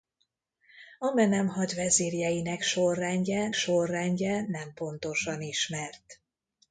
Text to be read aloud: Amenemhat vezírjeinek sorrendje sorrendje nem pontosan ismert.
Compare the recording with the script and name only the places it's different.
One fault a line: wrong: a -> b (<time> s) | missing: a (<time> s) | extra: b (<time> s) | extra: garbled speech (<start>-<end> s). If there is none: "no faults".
no faults